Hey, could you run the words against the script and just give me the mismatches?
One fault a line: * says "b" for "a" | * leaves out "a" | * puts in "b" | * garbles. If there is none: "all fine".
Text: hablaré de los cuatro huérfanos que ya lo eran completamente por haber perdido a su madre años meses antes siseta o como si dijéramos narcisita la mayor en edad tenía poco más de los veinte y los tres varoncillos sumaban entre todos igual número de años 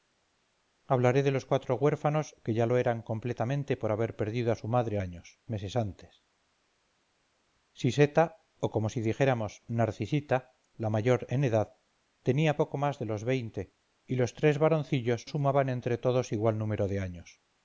all fine